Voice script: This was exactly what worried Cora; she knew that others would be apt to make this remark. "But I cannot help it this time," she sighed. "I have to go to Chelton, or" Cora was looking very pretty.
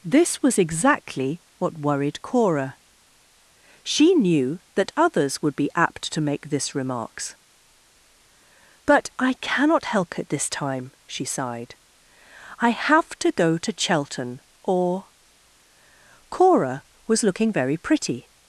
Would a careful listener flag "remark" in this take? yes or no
yes